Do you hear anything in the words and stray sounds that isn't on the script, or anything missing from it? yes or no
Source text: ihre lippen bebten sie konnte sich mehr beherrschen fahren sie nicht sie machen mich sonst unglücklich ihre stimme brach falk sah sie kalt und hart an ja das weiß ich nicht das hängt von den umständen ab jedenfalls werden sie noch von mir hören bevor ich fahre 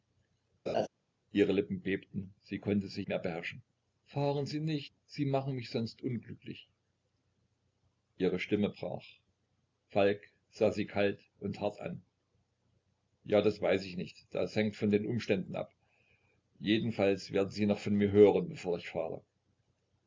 yes